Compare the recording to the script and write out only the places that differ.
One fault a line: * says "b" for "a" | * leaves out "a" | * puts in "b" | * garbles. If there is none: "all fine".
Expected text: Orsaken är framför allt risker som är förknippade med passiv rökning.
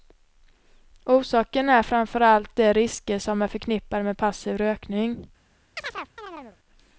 * puts in "de"